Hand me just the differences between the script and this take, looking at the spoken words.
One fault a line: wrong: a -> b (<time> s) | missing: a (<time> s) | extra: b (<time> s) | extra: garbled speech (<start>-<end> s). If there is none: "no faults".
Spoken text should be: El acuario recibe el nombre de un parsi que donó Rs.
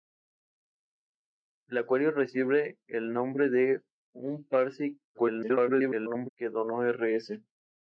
extra: garbled speech (5.1-6.3 s)